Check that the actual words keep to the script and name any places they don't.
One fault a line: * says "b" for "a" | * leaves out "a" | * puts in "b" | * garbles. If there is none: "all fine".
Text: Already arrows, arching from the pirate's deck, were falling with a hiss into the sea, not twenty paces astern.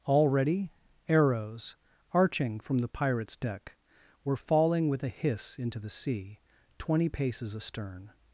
* leaves out "not"